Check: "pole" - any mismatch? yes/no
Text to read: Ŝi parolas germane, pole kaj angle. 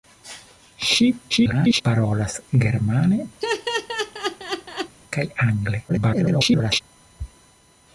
yes